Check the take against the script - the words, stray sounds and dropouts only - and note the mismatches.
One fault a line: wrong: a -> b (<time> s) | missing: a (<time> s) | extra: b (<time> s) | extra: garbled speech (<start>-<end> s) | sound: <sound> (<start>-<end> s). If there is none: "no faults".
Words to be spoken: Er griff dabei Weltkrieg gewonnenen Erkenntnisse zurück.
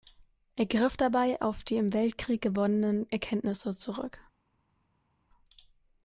extra: auf die im (1.4 s)